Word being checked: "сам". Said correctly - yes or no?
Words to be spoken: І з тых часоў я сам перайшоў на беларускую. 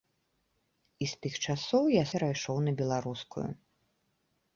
no